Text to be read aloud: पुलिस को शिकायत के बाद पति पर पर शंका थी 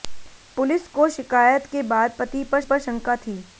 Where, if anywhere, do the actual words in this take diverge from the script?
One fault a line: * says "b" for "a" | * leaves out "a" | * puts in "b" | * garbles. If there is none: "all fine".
all fine